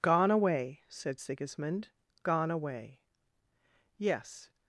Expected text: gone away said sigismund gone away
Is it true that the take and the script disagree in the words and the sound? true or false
true